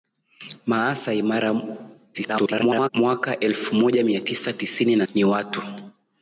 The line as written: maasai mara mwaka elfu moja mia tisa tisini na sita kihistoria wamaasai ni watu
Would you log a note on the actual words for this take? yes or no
yes